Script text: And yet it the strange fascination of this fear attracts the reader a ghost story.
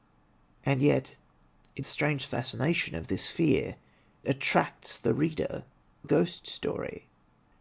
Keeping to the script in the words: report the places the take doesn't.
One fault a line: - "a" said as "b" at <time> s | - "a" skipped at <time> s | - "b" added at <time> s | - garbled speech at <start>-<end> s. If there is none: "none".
none